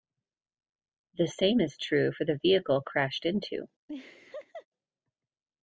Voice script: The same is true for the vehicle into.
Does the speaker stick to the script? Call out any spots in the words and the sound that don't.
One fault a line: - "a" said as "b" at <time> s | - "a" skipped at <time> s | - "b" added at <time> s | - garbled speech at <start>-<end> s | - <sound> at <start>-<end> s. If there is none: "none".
- "crashed" added at 2.8 s
- laugh at 3.9-4.7 s